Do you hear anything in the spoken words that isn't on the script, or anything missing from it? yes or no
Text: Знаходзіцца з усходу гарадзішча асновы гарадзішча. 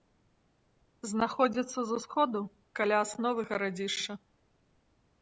yes